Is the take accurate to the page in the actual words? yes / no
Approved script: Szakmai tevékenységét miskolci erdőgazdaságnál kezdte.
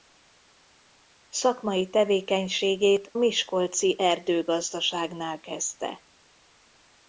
yes